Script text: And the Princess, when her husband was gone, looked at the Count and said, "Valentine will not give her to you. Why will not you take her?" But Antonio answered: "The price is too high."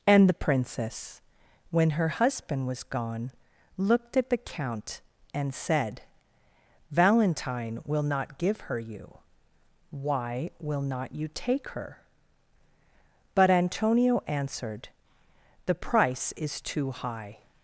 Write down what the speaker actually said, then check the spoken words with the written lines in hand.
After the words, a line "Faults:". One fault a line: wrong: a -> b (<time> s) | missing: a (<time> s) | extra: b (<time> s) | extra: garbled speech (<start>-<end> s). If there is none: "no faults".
And the Princess, when her husband was gone, looked at the Count and said, "Valentine will not give her you. Why will not you take her?" But Antonio answered: "The price is too high."
Faults:
missing: to (8.8 s)